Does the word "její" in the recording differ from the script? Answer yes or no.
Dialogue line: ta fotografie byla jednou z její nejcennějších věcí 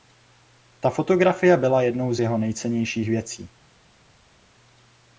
yes